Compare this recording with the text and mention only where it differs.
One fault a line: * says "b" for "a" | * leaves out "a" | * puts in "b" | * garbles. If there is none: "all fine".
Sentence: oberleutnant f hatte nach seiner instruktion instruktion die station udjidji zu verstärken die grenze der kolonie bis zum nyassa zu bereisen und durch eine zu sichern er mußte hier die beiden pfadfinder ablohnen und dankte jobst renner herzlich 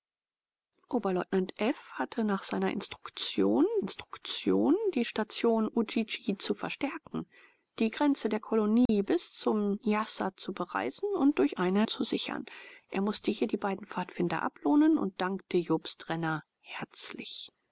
all fine